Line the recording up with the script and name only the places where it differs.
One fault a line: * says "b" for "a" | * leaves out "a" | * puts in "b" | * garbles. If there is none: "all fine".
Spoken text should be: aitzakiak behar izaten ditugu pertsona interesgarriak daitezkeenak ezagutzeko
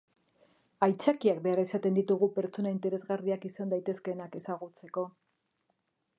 * puts in "izan"